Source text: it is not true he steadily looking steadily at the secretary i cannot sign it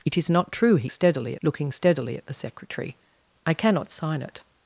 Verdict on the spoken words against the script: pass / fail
pass